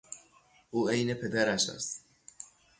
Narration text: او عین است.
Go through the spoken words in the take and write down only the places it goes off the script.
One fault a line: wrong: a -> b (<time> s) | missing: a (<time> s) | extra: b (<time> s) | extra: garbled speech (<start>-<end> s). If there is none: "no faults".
extra: پدرش (1.1 s)